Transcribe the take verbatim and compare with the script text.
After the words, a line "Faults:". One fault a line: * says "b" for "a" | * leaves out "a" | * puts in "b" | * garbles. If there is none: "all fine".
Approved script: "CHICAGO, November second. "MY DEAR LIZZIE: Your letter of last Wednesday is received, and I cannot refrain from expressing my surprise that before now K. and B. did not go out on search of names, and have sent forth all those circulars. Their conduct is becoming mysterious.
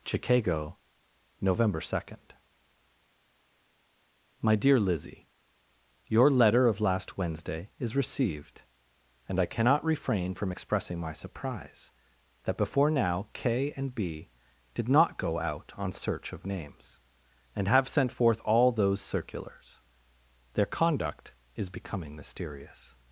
"CHICAGO, November second. "MY DEAR LIZZIE: Your letter of last Wednesday is received, and I cannot refrain from expressing my surprise that before now K. and B. did not go out on search of names, and have sent forth all those circulars. Their conduct is becoming mysterious.
Faults:
all fine